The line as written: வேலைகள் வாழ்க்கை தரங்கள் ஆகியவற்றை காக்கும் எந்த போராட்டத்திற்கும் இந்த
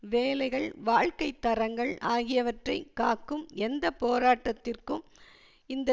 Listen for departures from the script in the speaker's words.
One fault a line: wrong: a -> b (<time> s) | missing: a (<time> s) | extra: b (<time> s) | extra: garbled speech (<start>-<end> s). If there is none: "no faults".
no faults